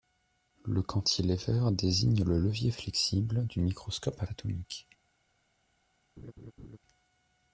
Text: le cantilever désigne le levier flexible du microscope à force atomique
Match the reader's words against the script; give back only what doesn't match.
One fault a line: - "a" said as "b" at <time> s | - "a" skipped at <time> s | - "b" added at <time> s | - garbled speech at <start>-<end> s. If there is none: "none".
- "force" skipped at 4.3 s